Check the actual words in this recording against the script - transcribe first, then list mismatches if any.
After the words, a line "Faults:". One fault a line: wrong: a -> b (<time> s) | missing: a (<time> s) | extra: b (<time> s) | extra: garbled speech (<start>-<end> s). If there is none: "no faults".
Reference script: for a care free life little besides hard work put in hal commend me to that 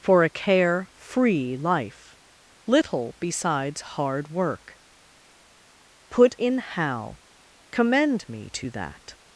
for a care free life little besides hard work put in hal commend me to that
Faults:
no faults